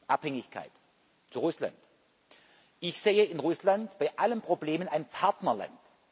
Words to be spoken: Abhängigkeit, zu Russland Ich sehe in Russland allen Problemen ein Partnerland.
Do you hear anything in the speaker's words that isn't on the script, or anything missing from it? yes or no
yes